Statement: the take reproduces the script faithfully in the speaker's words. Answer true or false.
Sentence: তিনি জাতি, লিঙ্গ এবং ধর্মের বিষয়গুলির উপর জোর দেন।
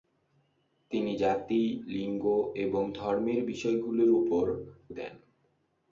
false